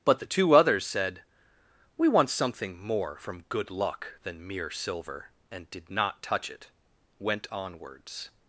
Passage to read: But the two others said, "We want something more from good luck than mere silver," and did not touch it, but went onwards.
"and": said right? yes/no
yes